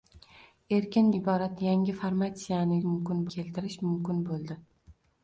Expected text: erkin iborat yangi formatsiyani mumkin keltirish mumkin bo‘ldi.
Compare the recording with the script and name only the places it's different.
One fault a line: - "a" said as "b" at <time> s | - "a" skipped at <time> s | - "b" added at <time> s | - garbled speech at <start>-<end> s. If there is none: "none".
none